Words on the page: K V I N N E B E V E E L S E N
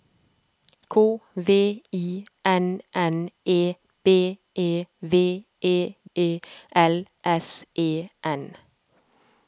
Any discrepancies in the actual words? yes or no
no